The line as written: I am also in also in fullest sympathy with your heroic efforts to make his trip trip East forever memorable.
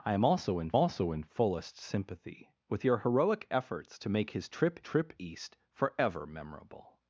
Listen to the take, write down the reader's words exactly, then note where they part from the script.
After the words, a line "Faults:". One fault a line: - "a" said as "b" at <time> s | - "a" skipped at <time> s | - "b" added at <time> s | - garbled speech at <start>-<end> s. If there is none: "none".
I am also in also in fullest sympathy with your heroic efforts to make his trip trip East forever memorable.
Faults:
none